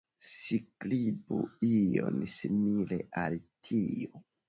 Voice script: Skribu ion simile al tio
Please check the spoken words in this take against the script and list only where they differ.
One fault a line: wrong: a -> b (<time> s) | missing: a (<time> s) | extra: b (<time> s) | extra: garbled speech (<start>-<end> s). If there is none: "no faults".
no faults